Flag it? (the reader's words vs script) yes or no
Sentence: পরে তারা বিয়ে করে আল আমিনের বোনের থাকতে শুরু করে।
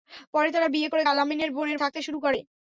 no